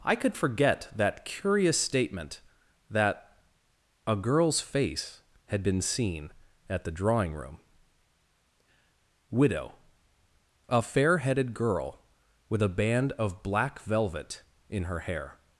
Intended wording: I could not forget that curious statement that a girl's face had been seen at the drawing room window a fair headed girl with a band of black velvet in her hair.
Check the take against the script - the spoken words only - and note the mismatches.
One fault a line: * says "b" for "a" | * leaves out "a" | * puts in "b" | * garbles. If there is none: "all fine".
* leaves out "not"
* says "widow" for "window"